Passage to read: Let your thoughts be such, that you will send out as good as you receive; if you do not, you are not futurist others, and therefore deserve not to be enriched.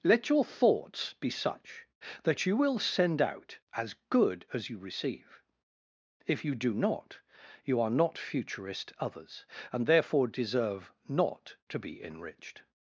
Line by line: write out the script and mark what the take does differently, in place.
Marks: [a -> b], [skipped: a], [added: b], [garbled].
Let your thoughts be such, that you will send out as good as you receive; if you do not, you are not futurist others, and therefore deserve not to be enriched.